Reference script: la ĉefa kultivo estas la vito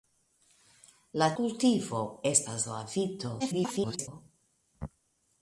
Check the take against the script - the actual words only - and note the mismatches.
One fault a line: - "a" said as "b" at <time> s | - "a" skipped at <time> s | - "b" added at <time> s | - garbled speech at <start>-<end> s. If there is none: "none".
- "ĉefa" skipped at 1.3 s
- garbled speech at 3.4-4.1 s